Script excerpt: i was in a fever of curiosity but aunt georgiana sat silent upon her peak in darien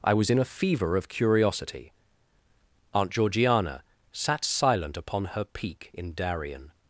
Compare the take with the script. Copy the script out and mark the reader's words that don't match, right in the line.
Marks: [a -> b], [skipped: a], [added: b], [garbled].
i was in a fever of curiosity [skipped: but] aunt georgiana sat silent upon her peak in darien